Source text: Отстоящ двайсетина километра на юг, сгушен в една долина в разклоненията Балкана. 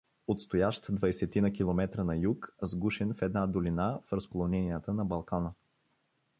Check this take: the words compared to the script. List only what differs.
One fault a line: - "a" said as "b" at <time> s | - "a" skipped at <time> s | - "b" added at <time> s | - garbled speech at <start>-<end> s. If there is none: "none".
- "на" added at 4.9 s